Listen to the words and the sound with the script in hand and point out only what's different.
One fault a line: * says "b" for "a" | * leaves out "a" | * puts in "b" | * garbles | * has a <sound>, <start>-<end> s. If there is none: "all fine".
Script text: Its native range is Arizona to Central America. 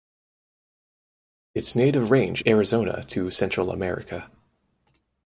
* leaves out "is"